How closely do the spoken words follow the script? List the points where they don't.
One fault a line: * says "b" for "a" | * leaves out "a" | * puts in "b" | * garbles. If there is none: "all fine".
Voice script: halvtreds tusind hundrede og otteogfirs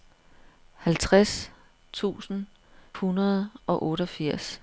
all fine